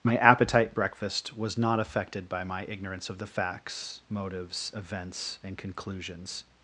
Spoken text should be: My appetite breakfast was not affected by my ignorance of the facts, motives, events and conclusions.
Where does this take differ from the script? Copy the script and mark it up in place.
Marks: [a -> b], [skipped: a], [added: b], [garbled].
My appetite breakfast was not affected by my ignorance of the facts, motives, events and conclusions.